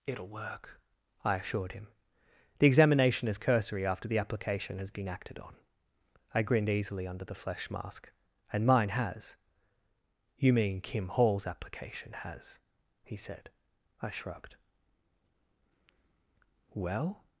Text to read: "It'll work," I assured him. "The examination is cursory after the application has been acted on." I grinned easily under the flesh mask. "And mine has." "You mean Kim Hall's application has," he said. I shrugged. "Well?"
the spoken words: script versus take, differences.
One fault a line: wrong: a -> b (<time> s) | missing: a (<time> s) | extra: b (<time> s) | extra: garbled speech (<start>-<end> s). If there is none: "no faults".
no faults